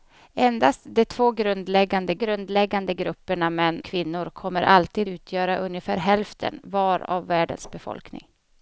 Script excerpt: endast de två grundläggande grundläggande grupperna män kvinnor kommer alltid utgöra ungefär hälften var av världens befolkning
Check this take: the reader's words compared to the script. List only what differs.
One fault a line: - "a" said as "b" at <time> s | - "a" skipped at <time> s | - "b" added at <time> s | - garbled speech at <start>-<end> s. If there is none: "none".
none